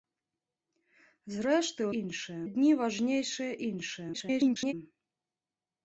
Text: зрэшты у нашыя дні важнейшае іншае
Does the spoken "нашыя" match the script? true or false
false